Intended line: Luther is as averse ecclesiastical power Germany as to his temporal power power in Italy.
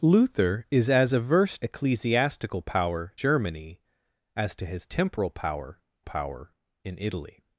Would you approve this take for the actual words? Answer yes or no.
yes